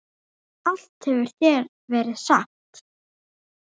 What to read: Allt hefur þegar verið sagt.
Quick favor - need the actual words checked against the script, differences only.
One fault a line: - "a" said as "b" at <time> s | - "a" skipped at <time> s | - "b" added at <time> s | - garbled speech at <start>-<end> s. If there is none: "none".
none